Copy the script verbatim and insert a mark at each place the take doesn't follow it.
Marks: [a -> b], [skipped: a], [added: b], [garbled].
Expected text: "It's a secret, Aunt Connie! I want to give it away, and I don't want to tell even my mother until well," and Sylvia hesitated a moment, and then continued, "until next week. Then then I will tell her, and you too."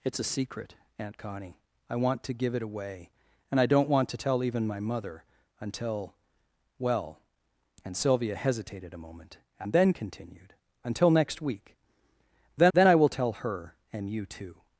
"It's a secret, Aunt Connie! I want to give it away, and I don't want to tell even my mother until well," and Sylvia hesitated a moment, and then continued, "until next week. Then then I will tell her, and you too."